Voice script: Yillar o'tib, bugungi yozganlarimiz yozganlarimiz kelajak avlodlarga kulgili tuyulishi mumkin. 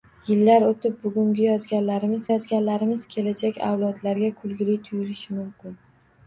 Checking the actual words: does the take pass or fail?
pass